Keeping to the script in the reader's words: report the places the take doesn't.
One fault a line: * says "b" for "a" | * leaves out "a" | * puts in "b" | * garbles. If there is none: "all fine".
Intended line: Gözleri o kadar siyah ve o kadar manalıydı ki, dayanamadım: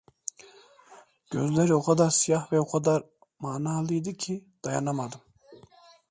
all fine